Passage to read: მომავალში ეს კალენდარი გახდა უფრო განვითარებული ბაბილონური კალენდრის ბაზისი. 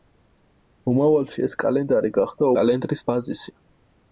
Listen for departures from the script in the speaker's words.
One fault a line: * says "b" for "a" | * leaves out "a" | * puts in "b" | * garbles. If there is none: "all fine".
* leaves out "უფრო განვითარებული ბაბილონური"